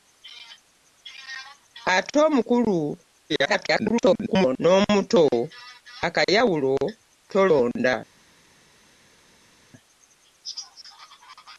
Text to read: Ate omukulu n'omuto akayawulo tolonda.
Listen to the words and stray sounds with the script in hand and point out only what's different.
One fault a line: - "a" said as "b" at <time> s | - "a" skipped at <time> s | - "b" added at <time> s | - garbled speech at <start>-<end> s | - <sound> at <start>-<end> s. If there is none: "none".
- garbled speech at 3.3-4.6 s